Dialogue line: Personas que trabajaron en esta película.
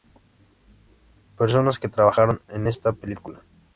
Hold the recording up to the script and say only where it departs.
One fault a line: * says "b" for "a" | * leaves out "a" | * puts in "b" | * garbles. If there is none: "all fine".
all fine